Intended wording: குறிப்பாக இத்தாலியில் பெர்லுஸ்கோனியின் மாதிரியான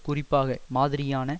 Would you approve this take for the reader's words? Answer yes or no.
no